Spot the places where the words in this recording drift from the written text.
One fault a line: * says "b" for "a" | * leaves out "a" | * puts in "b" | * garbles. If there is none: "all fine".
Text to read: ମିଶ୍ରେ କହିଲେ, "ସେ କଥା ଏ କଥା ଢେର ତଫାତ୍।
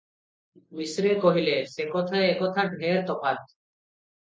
all fine